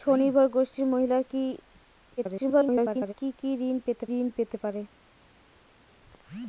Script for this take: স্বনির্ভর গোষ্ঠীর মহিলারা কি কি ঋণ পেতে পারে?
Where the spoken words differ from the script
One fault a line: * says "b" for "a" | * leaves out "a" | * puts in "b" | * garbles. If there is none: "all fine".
* garbles
* puts in "ঋণ পেতে"